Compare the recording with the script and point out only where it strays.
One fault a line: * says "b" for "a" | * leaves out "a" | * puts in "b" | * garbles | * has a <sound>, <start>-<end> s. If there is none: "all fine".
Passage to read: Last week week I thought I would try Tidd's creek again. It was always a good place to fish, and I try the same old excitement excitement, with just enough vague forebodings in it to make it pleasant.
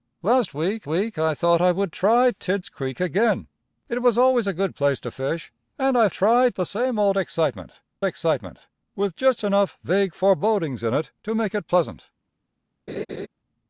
* has a laugh, 12.9-13.3 s